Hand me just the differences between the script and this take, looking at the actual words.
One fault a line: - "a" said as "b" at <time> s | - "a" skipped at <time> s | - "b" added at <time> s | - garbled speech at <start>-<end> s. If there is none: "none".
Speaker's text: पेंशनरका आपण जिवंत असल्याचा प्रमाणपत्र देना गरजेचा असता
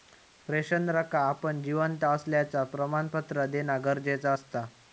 none